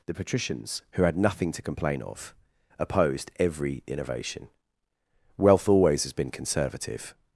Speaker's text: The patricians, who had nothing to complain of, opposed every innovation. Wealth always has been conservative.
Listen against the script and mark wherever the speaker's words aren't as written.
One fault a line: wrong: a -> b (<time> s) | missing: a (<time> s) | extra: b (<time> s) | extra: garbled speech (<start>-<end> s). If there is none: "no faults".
no faults